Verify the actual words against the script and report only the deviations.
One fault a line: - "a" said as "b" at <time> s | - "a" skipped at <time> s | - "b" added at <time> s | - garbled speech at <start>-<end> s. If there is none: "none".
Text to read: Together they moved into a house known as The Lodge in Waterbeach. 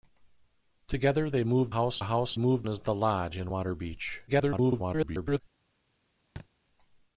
- "into" said as "house" at 1.7 s
- "known" said as "moved" at 2.4 s
- garbled speech at 4.3-5.4 s